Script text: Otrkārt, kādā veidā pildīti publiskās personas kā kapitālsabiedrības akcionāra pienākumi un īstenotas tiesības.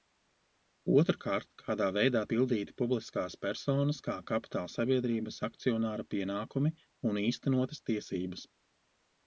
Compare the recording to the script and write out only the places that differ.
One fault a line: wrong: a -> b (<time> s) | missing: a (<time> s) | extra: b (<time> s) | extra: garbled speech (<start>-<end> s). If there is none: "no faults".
no faults